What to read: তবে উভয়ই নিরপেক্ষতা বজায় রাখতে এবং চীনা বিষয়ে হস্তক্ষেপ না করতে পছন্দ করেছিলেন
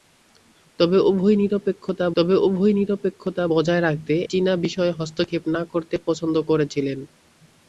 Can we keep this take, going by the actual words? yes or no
no